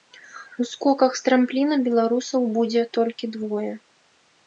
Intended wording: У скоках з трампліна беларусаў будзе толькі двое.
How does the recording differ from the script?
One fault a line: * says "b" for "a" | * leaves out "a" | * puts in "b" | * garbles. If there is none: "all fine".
all fine